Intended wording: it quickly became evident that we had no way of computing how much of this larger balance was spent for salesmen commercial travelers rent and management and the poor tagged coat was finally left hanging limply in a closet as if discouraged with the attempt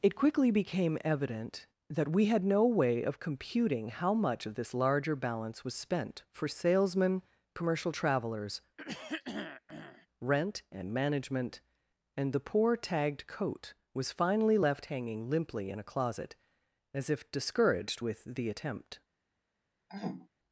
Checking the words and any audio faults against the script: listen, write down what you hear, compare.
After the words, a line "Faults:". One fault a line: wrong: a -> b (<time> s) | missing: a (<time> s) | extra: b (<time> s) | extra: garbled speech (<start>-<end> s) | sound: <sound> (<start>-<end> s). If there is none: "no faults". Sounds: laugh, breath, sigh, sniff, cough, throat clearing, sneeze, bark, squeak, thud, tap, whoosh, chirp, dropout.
it quickly became evident that we had no way of computing how much of this larger balance was spent for salesmen commercial travelers rent and management and the poor tagged coat was finally left hanging limply in a closet as if discouraged with the attempt
Faults:
sound: throat clearing (8.8-10.1 s)
sound: throat clearing (19.9-20.3 s)